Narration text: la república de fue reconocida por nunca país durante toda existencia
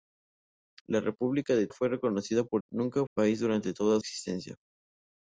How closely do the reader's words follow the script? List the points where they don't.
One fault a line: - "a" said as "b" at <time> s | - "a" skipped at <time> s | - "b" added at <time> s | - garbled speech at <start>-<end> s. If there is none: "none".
none